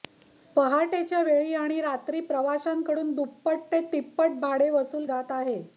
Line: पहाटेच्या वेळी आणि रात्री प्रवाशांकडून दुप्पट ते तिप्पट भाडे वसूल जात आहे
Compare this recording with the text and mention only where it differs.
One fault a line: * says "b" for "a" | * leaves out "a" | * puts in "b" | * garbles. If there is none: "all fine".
all fine